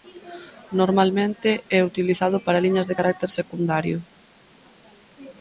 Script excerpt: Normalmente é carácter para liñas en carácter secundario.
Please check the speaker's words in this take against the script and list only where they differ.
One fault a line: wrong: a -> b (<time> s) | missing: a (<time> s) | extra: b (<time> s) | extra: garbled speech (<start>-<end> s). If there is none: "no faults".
wrong: carácter -> utilizado (1.9 s)
wrong: en -> de (2.9 s)